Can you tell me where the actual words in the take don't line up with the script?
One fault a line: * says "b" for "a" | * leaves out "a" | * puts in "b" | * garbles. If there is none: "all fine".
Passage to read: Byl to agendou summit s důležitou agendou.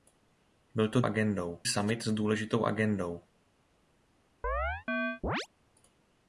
all fine